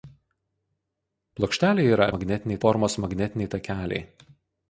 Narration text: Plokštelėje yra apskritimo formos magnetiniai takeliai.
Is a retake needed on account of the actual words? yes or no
yes